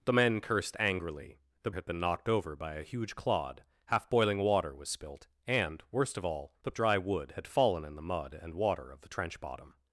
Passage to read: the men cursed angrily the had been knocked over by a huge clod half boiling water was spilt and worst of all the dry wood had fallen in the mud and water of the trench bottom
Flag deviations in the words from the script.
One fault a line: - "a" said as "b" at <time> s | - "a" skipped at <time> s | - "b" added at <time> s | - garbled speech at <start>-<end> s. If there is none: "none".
none